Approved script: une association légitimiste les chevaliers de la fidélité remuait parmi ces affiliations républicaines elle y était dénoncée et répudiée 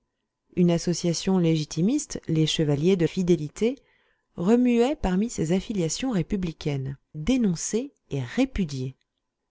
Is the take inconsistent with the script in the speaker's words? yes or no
yes